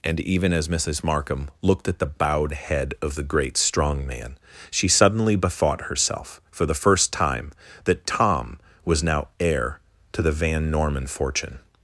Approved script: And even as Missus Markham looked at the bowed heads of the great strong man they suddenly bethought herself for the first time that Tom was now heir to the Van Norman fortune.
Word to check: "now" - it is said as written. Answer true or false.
true